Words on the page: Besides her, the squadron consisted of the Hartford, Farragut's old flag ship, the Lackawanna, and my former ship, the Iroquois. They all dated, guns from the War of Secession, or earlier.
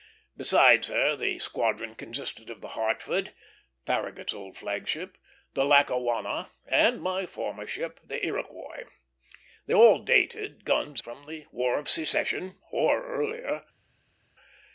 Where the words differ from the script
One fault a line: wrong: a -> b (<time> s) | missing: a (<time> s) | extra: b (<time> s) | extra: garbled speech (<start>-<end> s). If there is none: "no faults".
no faults